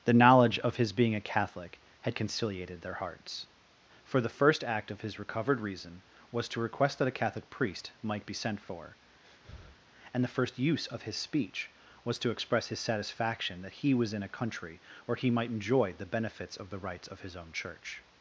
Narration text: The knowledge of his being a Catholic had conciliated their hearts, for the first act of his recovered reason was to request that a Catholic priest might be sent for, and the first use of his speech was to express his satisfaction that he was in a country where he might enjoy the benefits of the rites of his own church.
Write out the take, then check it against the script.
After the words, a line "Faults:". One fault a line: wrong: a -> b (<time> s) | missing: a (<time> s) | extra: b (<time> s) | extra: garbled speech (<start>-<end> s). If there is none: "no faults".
The knowledge of his being a Catholic had conciliated their hearts, for the first act of his recovered reason was to request that a Catholic priest might be sent for, and the first use of his speech was to express his satisfaction that he was in a country where he might enjoy the benefits of the rites of his own church.
Faults:
no faults